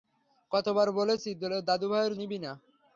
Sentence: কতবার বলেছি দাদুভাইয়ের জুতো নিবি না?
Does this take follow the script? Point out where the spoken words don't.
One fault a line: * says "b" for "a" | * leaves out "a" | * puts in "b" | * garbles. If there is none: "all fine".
* leaves out "জুতো"